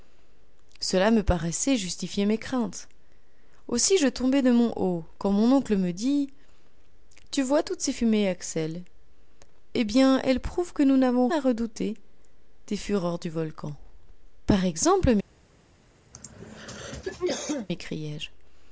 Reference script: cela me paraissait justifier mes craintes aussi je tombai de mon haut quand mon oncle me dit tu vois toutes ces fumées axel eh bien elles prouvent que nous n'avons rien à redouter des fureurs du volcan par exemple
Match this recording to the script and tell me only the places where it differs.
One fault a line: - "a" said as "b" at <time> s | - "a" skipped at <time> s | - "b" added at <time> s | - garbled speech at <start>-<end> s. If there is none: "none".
- "rien" skipped at 11.3 s